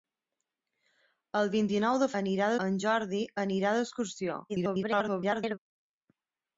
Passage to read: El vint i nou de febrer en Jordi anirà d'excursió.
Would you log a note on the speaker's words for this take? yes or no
yes